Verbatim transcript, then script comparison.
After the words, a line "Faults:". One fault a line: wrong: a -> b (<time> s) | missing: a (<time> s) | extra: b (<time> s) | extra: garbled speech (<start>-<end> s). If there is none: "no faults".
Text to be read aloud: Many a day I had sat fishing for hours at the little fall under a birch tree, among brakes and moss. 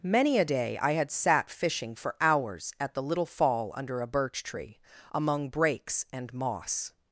Many a day I had sat fishing for hours at the little fall under a birch tree, among brakes and moss.
Faults:
no faults